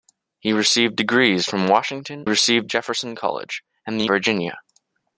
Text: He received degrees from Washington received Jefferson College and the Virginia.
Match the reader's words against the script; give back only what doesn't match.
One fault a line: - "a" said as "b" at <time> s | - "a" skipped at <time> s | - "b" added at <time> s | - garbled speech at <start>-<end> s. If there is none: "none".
none